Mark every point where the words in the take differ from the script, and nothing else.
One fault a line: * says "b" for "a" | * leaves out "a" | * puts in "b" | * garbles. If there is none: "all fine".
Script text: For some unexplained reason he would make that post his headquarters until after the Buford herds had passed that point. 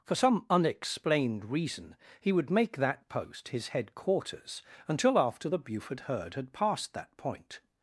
* says "herd" for "herds"